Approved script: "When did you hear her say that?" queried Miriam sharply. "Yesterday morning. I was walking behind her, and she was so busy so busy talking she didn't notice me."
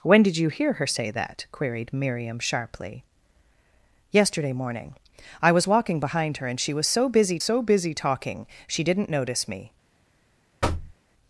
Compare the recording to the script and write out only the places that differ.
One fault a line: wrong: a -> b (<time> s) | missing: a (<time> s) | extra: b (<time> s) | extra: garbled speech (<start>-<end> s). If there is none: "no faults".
no faults